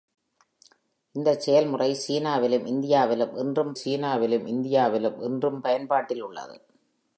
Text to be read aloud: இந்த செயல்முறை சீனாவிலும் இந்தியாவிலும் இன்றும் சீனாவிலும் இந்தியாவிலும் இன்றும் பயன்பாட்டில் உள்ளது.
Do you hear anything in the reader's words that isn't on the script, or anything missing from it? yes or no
no